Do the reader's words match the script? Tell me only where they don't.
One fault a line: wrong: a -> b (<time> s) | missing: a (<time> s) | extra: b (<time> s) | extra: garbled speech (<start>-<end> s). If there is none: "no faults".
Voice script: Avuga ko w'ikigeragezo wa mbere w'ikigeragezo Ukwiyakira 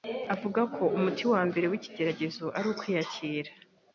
wrong: w'ikigeragezo -> umuti (1.0 s)
extra: ari (2.6 s)